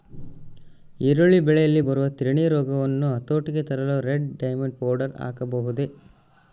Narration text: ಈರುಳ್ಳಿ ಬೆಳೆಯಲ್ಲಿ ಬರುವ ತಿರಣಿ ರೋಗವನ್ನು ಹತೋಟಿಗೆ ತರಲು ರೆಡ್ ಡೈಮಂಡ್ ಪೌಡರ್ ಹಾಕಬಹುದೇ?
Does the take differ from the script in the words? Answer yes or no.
no